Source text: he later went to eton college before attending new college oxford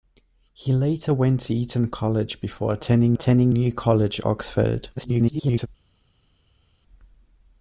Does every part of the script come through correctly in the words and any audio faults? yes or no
no